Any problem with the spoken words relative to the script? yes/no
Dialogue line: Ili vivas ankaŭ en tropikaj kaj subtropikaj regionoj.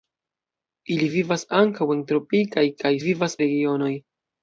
yes